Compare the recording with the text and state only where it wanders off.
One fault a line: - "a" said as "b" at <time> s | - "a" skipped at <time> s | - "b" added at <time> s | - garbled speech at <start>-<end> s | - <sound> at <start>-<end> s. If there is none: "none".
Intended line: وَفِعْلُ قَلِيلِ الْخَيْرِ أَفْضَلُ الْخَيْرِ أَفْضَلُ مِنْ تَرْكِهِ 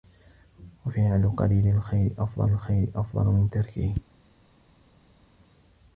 none